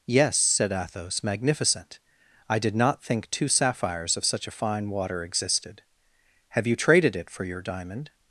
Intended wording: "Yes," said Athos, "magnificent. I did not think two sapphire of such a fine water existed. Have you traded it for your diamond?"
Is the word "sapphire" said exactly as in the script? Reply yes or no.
no